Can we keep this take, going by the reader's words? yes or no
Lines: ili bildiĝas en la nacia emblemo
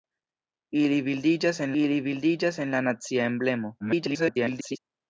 no